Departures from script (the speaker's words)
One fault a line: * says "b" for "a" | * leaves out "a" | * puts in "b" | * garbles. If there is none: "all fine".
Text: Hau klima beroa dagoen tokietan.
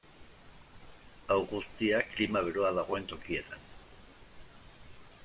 * puts in "guztia"